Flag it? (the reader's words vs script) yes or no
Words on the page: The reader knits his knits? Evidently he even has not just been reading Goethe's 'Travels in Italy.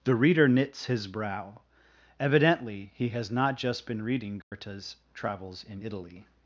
yes